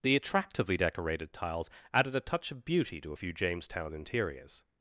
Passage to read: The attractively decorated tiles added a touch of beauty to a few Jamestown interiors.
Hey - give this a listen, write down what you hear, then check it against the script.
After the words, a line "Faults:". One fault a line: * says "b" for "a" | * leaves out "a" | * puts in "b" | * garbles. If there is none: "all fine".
The attractively decorated tiles added a touch of beauty to a few Jamestown interiors.
Faults:
all fine